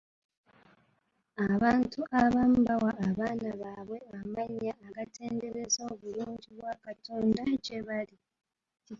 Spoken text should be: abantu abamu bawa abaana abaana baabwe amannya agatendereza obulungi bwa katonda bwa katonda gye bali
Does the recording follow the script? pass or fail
fail